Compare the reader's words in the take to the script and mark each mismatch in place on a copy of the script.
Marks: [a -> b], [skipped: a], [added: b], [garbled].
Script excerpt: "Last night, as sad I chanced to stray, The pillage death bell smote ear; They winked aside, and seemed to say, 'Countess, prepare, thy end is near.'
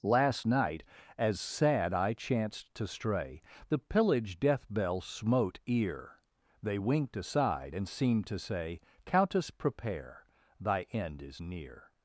"Last night, as sad I chanced to stray, The pillage death bell smote ear; They winked aside, and seemed to say, 'Countess, prepare, thy end is near.'